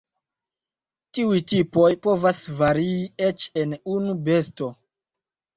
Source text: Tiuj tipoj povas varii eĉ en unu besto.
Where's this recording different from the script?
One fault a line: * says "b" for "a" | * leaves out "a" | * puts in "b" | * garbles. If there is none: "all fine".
all fine